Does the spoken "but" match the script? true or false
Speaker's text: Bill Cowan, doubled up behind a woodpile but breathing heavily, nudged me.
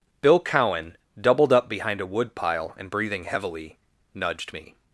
false